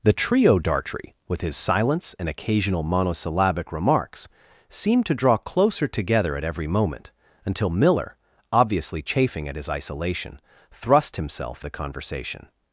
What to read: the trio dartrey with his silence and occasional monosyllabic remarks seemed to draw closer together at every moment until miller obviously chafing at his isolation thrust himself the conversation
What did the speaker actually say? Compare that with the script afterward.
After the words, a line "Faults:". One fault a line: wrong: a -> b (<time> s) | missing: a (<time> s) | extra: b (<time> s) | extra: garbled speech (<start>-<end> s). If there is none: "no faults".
the trio dartrey with his silence and occasional monosyllabic remarks seemed to draw closer together at every moment until miller obviously chafing at his isolation thrust himself the conversation
Faults:
no faults